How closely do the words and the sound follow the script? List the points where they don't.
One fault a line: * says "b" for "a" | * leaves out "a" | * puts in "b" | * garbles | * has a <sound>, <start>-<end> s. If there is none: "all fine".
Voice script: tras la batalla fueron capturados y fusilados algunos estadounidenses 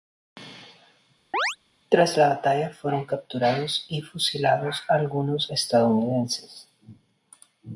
* has a chirp, 1.3-1.6 s